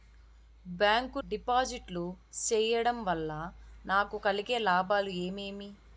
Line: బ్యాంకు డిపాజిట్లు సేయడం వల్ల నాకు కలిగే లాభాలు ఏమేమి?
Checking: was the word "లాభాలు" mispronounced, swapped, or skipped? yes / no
no